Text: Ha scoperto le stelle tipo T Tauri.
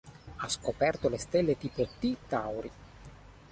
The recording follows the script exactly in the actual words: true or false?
true